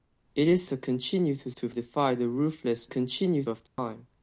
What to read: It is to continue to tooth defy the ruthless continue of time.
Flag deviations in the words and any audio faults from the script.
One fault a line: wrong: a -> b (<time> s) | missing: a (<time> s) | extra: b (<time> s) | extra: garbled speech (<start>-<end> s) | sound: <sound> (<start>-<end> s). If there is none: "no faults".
sound: dropout (3.7-3.8 s)